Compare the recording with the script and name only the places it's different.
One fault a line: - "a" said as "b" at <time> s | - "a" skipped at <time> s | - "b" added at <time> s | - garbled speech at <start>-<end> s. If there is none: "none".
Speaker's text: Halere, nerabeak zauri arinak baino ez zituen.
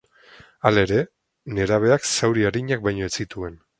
none